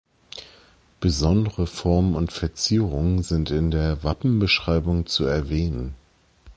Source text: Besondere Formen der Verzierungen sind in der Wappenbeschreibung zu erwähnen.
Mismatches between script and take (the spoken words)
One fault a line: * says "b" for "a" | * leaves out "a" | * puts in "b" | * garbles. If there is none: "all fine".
* says "und" for "der"